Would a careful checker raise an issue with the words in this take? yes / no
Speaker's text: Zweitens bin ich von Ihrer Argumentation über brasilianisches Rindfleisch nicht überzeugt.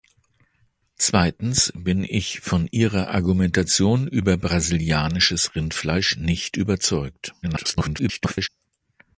yes